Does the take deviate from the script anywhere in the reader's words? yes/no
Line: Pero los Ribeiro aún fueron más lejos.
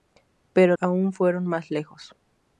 yes